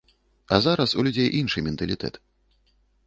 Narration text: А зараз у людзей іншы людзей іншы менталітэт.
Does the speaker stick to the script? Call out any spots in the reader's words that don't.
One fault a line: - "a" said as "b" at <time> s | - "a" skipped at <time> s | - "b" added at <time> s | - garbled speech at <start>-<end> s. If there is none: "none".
- "людзей іншы" skipped at 1.6 s